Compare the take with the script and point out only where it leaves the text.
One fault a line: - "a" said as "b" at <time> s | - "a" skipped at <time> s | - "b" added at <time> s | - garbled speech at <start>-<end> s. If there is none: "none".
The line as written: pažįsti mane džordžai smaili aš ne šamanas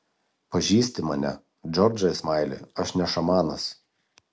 none